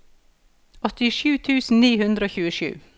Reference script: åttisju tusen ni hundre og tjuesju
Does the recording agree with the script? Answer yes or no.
yes